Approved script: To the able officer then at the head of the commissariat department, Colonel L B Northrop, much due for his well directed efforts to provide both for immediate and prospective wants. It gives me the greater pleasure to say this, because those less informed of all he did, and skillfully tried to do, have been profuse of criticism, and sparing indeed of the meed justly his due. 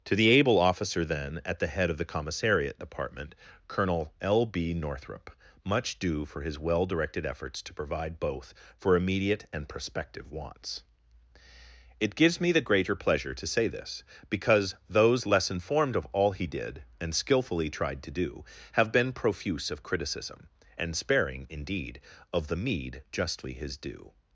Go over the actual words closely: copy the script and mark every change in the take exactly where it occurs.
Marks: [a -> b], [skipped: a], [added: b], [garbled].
To the able officer then at the head of the commissariat department, Colonel L B Northrop, much due for his well directed efforts to provide both for immediate and prospective wants. It gives me the greater pleasure to say this, because those less informed of all he did, and skillfully tried to do, have been profuse of criticism, and sparing indeed of the meed justly his due.